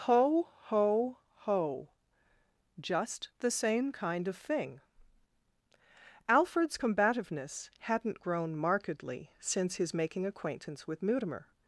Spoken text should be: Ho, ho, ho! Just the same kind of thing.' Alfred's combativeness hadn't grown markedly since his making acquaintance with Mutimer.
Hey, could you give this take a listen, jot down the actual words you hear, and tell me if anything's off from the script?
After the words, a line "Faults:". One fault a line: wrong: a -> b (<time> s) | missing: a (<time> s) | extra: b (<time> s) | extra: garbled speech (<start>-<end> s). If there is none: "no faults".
Ho, ho, ho! Just the same kind of thing.' Alfred's combativeness hadn't grown markedly since his making acquaintance with Mutimer.
Faults:
no faults